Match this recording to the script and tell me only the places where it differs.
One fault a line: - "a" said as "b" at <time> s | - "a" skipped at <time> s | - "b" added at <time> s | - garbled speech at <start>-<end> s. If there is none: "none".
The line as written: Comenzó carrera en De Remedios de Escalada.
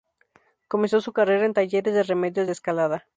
- "su" added at 1.0 s
- "Talleres" added at 1.5 s